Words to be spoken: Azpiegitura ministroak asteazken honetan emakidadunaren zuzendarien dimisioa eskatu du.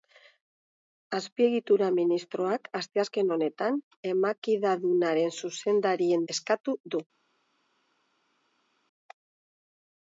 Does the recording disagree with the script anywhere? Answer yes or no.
yes